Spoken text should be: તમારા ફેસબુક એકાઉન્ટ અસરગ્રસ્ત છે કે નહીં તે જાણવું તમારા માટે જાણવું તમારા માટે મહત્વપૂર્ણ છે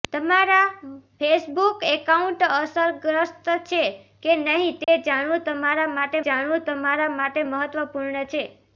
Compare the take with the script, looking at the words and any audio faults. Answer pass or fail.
fail